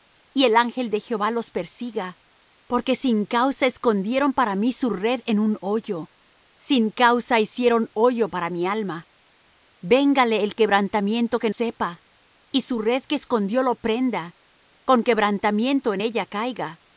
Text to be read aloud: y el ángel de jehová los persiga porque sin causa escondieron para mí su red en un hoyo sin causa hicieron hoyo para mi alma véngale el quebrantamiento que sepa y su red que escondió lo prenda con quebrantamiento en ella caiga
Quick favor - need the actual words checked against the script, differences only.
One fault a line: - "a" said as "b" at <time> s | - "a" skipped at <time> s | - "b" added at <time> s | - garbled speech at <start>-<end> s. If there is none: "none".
none